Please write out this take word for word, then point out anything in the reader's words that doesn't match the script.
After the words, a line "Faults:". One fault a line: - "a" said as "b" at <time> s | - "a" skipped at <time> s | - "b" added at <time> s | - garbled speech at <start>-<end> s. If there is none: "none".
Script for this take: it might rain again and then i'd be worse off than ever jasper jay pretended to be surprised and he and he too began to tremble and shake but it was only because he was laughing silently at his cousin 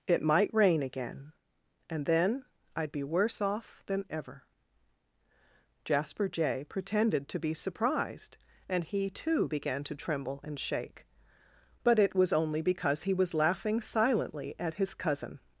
it might rain again and then i'd be worse off than ever jasper jay pretended to be surprised and he too began to tremble and shake but it was only because he was laughing silently at his cousin
Faults:
- "and he" skipped at 9.1 s